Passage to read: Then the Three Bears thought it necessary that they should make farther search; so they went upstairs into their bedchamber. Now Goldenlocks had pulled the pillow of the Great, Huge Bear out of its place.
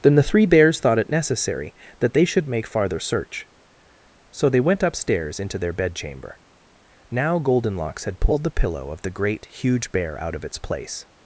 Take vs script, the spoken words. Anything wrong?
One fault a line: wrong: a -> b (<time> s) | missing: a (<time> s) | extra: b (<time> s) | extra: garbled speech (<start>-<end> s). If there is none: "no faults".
no faults